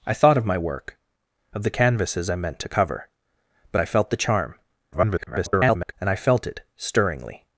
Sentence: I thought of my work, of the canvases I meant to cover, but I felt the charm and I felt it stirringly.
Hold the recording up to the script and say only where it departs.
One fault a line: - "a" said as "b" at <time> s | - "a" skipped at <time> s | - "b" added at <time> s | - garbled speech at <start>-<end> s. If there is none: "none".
- garbled speech at 4.9-5.9 s